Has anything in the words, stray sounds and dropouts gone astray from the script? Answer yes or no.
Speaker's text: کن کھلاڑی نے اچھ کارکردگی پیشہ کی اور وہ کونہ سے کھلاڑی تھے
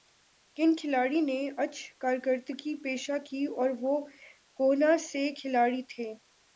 no